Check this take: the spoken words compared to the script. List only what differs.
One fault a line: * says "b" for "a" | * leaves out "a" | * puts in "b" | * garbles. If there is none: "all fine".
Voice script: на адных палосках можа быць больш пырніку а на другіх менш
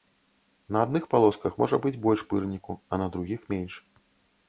all fine